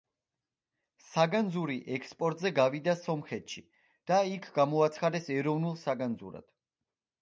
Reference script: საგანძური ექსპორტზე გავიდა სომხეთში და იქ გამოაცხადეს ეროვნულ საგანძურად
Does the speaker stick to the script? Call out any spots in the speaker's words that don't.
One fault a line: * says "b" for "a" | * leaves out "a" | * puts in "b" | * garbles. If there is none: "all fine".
all fine